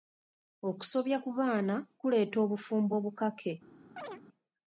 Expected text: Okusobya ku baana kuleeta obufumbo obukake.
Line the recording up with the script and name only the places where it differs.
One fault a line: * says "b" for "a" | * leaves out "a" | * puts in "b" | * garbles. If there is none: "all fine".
all fine